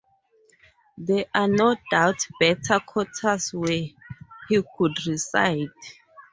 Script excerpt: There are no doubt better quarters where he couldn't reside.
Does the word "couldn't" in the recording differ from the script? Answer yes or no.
yes